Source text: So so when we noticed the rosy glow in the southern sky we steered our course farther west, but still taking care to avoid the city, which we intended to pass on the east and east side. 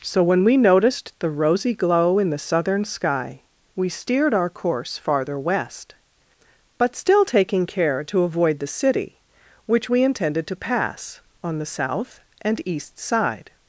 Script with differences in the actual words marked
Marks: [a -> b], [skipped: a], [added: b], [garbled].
So [skipped: so] when we noticed the rosy glow in the southern sky we steered our course farther west, but still taking care to avoid the city, which we intended to pass on the [east -> south] and east side.